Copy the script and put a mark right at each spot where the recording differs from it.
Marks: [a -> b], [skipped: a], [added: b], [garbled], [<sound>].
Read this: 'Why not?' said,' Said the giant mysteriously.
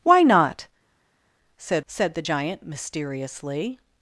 'Why not?' said,' Said the giant mysteriously.